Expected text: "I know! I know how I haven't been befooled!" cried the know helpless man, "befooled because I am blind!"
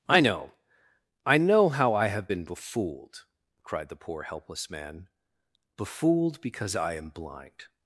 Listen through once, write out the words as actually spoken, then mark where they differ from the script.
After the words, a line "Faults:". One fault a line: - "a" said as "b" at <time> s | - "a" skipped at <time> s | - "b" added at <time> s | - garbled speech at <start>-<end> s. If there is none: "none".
"I know! I know how I have been befooled!" cried the poor helpless man, "befooled because I am blind!"
Faults:
- "haven't" said as "have" at 2.1 s
- "know" said as "poor" at 4.0 s